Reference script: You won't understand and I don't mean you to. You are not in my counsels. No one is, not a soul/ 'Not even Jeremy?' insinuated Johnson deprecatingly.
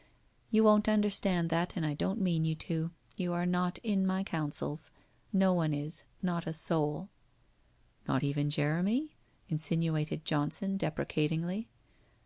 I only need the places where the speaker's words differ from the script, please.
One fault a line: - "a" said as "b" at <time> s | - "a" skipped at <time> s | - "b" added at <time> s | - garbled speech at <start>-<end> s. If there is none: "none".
- "that" added at 1.5 s